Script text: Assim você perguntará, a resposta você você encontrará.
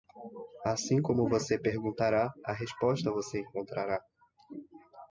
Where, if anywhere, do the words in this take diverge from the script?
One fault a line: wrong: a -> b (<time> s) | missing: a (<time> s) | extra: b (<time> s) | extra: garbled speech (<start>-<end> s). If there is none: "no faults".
extra: como (1.0 s)
missing: você (3.4 s)